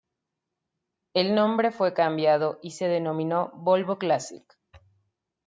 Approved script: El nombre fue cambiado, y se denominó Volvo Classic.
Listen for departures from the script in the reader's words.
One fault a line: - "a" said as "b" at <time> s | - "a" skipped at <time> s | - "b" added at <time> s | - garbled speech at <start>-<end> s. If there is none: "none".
none